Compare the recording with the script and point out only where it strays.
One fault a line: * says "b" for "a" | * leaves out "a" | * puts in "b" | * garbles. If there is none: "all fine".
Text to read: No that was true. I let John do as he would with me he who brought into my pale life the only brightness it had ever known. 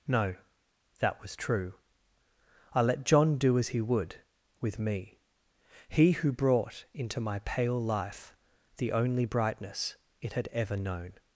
all fine